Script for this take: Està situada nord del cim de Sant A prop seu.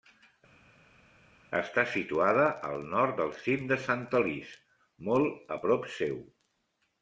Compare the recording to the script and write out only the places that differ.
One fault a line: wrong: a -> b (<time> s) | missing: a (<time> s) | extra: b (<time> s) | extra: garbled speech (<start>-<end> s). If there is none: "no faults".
extra: al (2.7 s)
extra: Alís molt (4.2 s)